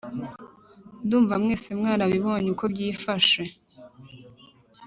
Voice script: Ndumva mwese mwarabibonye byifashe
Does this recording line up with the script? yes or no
no